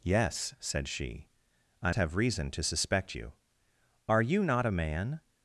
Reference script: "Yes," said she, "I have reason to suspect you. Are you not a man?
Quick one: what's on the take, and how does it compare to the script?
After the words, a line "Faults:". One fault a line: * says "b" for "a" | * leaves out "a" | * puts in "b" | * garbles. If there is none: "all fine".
"Yes," said she, "I have reason to suspect you. Are you not a man?
Faults:
all fine